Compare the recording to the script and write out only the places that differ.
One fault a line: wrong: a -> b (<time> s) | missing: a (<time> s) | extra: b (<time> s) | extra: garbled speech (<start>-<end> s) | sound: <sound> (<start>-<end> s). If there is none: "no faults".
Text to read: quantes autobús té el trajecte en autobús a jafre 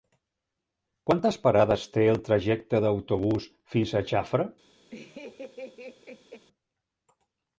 wrong: autobús -> parades (1.4 s)
extra: fins (3.8 s)
sound: laugh (4.9-6.5 s)